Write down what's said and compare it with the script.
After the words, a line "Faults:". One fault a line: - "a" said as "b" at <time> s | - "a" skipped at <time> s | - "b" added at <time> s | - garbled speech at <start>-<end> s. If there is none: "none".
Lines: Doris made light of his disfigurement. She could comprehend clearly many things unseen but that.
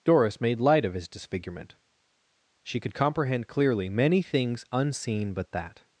Doris made light of his disfigurement. She could comprehend clearly many things unseen but that.
Faults:
none